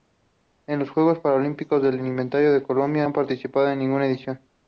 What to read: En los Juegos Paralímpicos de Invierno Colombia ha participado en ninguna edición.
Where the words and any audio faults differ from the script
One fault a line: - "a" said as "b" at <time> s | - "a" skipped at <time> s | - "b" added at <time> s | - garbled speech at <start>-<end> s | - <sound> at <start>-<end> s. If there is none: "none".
none